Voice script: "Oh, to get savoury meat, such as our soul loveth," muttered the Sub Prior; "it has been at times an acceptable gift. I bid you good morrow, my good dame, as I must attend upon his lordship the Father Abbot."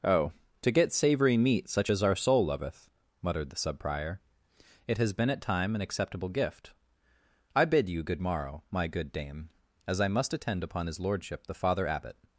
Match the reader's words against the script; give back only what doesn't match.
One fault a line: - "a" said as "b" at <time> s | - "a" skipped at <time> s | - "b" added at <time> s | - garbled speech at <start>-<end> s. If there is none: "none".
- "times" said as "time" at 5.4 s